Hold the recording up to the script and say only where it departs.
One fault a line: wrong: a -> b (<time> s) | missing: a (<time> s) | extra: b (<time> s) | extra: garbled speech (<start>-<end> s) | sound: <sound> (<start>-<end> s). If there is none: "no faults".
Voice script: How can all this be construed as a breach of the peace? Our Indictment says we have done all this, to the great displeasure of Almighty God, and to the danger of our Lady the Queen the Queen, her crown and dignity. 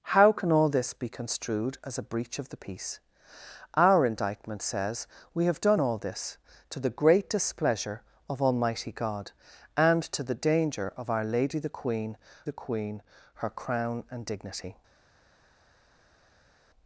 no faults